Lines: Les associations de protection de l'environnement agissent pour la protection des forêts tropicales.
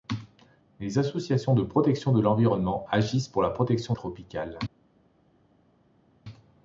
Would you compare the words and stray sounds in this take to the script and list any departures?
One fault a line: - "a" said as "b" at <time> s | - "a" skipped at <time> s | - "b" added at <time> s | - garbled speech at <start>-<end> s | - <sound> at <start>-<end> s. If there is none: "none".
- "des forêts" skipped at 3.9 s